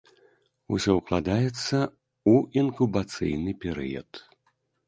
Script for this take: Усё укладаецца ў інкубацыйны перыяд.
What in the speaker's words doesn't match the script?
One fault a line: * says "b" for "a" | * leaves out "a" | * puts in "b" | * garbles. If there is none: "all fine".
all fine